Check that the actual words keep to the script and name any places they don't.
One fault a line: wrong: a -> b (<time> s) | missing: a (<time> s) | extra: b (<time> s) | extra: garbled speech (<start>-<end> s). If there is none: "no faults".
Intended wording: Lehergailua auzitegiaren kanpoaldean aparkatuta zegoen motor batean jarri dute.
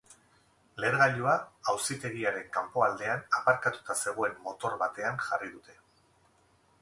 no faults